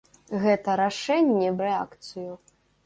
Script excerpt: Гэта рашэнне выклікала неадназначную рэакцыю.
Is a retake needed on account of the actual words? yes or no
yes